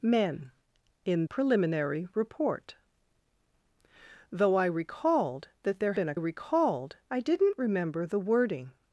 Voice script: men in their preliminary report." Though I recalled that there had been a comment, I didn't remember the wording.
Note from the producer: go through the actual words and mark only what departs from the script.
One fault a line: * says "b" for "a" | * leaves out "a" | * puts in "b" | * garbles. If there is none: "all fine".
* leaves out "their"
* leaves out "had"
* says "recalled" for "comment"